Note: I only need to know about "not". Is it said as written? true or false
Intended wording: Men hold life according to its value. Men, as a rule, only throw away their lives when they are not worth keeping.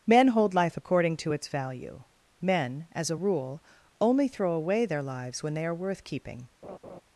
false